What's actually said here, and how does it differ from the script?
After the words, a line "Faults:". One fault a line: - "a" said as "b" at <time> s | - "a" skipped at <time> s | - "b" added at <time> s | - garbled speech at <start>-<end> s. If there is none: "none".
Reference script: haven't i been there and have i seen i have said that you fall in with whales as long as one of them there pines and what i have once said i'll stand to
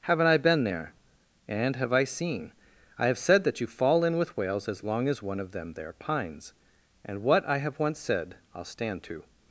haven't i been there and have i seen i have said that you fall in with whales as long as one of them there pines and what i have once said i'll stand to
Faults:
none